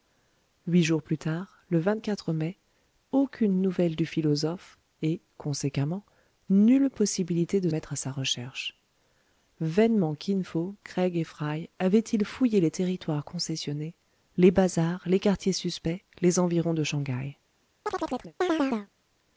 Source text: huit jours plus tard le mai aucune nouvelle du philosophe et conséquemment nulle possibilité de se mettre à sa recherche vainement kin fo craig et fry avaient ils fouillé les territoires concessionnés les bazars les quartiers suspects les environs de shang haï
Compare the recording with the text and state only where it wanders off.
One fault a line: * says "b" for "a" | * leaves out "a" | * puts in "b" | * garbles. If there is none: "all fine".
* leaves out "se"